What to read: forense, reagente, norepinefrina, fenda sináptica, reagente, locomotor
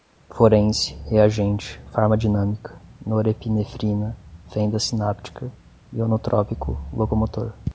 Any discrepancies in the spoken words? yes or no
yes